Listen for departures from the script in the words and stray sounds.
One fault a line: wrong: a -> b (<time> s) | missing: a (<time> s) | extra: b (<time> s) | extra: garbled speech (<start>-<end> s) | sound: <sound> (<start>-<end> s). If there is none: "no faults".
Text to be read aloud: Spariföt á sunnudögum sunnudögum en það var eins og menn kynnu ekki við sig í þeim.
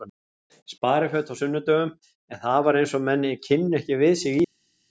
missing: sunnudögum (1.9 s)